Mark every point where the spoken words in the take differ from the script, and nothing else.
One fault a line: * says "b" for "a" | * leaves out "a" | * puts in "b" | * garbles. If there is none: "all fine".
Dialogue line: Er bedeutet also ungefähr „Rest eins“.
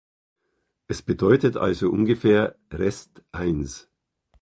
* says "Es" for "Er"